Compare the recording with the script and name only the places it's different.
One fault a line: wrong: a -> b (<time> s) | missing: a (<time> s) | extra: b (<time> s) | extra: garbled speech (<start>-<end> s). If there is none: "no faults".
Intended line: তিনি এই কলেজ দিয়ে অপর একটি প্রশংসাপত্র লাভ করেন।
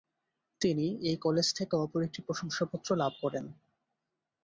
wrong: দিয়ে -> থেকে (1.6 s)